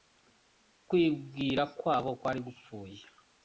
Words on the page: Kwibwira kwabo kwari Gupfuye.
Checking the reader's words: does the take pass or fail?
pass